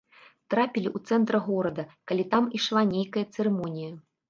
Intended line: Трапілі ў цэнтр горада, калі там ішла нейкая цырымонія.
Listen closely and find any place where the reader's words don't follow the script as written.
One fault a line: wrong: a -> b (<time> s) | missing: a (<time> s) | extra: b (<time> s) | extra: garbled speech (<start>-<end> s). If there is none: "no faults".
no faults